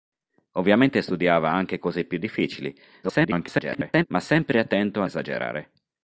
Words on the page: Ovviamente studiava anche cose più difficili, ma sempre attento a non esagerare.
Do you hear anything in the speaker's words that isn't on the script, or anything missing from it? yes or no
yes